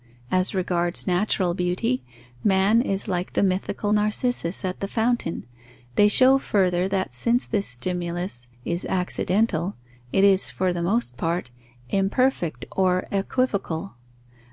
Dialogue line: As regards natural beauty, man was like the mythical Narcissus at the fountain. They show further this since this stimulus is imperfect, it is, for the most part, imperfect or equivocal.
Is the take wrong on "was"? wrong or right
wrong